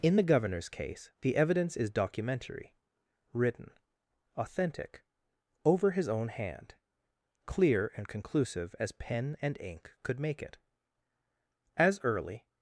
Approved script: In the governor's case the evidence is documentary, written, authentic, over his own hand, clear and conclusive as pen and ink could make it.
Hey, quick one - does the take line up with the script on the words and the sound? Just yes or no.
no